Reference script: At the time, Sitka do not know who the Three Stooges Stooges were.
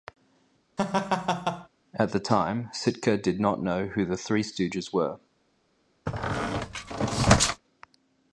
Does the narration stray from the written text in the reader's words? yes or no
yes